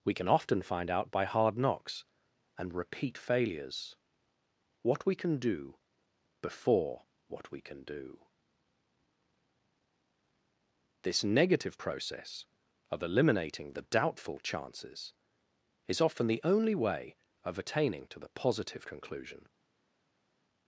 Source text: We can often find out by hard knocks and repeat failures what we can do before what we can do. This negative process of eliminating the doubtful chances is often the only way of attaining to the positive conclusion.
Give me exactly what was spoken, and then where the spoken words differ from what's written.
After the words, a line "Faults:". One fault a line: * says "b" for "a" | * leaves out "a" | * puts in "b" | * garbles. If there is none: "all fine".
We can often find out by hard knocks and repeat failures what we can do before what we can do. This negative process of eliminating the doubtful chances is often the only way of attaining to the positive conclusion.
Faults:
all fine